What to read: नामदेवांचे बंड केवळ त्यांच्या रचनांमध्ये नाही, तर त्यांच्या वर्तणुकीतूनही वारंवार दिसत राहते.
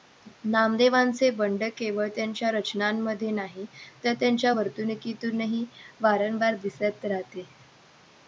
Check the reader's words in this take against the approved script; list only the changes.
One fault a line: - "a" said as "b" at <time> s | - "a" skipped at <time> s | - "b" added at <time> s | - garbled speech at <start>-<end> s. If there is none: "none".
none